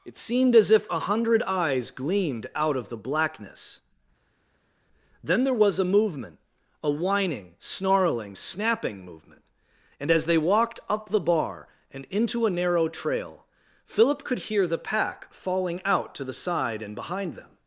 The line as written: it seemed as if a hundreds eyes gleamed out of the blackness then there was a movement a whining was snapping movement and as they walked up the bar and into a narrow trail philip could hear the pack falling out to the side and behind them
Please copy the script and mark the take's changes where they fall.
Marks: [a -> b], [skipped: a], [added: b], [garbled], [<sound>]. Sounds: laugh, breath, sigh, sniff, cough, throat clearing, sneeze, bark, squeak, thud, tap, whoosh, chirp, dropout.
it seemed as if a [hundreds -> hundred] eyes gleamed out of the blackness then there was a movement a whining [was -> snarling] snapping movement and as they walked up the bar and into a narrow trail philip could hear the pack falling out to the side and behind them